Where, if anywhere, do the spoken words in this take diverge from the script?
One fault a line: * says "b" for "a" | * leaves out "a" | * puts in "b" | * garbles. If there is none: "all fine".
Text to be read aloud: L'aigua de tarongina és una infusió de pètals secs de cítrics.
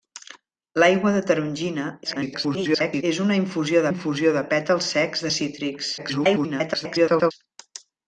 * garbles
* puts in "infusió"
* garbles